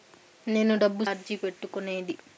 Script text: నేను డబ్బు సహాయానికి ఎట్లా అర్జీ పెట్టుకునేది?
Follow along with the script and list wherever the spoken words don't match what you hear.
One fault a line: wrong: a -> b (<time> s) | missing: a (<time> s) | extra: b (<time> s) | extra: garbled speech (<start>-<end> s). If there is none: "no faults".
missing: సహాయానికి ఎట్లా (1.0 s)